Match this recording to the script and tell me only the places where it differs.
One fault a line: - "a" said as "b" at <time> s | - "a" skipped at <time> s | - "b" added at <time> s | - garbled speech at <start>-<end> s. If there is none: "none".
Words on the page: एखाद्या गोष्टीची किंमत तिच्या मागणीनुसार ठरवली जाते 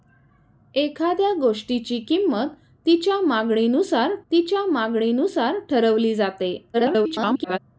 - "तिच्या मागणीनुसार" added at 4.3 s
- garbled speech at 6.7-7.6 s